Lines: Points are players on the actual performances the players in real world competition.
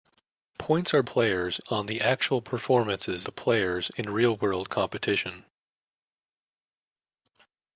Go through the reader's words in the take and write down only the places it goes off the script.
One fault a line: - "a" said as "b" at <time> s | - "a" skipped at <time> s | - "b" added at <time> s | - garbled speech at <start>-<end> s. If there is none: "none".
none